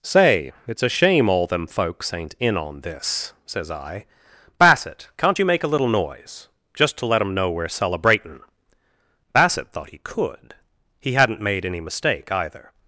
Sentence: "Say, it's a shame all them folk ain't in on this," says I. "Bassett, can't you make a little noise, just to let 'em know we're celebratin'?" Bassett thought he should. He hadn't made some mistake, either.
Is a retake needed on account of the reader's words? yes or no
yes